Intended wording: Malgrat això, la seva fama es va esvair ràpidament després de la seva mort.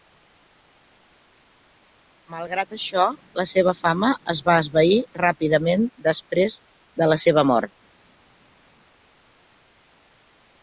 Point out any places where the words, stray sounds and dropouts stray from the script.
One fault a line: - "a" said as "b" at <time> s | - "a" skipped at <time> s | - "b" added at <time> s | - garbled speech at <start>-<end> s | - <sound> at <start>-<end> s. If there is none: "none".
none